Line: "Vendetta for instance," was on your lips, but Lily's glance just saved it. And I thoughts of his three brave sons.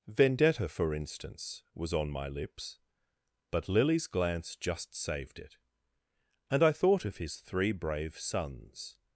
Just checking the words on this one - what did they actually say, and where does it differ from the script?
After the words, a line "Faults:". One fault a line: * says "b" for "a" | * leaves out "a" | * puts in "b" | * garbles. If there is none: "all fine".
"Vendetta for instance," was on my lips, but Lily's glance just saved it. And I thought of his three brave sons.
Faults:
* says "my" for "your"
* says "thought" for "thoughts"